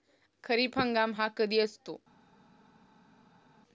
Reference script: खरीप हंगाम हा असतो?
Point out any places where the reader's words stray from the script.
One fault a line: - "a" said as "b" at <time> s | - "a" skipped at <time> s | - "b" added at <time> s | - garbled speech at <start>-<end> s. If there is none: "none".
- "कधी" added at 1.4 s